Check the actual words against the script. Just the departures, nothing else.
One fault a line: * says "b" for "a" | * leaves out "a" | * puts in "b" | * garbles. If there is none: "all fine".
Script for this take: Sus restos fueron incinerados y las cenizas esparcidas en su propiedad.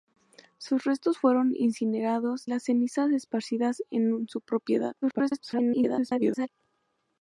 * leaves out "y"
* garbles